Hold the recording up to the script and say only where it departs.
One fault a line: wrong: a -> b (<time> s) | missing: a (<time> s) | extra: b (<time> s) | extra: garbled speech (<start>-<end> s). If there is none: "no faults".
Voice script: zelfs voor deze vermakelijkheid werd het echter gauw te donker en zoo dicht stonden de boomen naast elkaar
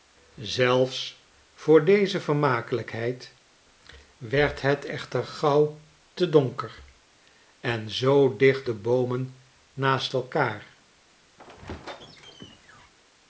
missing: stonden (8.7 s)